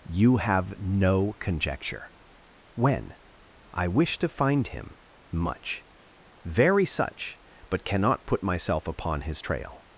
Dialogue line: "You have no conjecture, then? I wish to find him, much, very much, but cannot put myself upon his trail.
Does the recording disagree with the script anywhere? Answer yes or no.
yes